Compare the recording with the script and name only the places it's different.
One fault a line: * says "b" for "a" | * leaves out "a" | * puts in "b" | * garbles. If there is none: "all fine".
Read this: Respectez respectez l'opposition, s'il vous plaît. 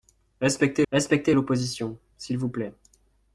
all fine